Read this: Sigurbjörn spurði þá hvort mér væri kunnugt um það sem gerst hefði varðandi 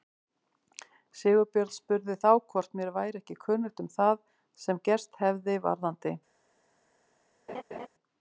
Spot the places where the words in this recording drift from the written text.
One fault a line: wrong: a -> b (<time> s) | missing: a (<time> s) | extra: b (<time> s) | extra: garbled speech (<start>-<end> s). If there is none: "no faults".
extra: ekki (3.2 s)